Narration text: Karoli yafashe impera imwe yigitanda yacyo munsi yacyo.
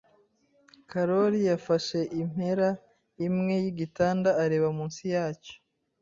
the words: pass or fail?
fail